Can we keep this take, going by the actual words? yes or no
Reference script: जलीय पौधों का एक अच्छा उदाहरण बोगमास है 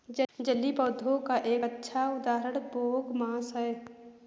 yes